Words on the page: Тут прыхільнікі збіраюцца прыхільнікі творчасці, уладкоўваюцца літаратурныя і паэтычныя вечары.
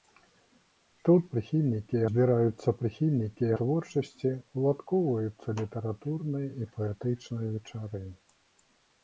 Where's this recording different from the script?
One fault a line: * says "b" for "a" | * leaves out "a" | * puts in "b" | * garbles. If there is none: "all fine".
all fine